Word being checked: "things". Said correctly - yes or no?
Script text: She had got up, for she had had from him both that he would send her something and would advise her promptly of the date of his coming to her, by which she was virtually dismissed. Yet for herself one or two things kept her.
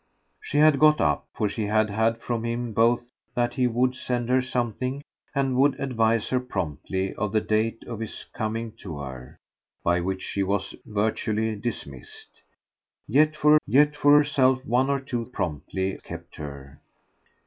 no